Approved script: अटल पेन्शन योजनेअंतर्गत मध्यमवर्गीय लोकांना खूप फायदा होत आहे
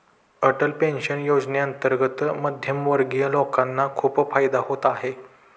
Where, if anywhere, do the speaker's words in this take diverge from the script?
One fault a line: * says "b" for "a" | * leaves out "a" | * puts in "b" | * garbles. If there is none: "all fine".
all fine